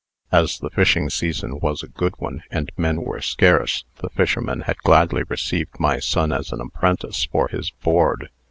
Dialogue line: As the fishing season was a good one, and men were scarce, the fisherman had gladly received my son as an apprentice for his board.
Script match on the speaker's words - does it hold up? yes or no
yes